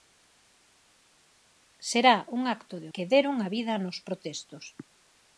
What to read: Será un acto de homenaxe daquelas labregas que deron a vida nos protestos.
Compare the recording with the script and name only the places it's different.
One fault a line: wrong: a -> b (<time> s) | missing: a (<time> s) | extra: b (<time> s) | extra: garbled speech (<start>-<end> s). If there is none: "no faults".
missing: homenaxe daquelas labregas (2.9 s)